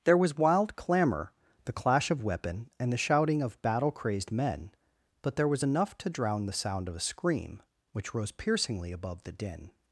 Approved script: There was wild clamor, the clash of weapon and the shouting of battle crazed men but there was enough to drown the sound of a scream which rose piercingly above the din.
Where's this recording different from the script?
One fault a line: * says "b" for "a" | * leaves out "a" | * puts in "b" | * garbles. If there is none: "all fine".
all fine